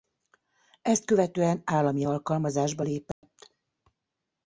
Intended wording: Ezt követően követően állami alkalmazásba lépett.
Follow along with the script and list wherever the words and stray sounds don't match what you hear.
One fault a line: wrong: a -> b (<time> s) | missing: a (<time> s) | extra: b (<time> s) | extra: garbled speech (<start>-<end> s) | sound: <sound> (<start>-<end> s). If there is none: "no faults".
missing: követően (1.6 s)
sound: dropout (3.1-3.2 s)